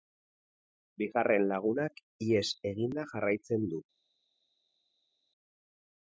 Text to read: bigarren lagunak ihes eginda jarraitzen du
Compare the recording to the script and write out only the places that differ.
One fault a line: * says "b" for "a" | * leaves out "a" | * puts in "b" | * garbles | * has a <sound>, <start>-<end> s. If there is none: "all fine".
all fine